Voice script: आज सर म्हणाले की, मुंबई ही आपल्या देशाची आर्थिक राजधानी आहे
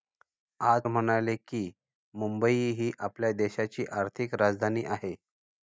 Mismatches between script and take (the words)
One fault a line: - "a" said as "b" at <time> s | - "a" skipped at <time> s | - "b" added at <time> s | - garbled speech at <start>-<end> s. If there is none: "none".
- "सर" skipped at 0.8 s